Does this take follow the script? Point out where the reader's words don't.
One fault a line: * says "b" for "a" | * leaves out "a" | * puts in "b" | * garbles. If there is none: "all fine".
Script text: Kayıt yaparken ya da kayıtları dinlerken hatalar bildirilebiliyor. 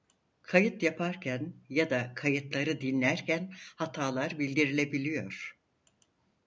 all fine